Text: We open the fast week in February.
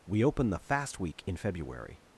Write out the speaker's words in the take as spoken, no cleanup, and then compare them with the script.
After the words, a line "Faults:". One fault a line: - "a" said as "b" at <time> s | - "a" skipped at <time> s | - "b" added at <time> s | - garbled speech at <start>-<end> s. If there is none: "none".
We open the fast week in February.
Faults:
none